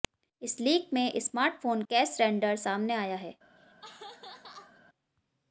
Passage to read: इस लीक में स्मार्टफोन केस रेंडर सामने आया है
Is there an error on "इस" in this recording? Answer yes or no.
no